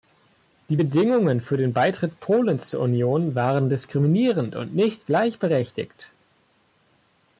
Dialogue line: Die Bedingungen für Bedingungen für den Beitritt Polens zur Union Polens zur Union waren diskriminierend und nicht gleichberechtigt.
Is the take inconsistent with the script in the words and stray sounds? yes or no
yes